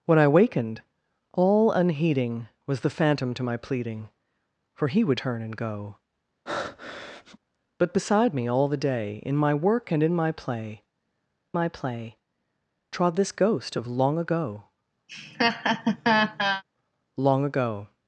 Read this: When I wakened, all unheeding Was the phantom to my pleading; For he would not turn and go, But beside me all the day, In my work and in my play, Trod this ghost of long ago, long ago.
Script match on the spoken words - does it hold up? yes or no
no